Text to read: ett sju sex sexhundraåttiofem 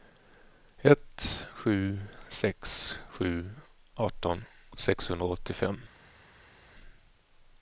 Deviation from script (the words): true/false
true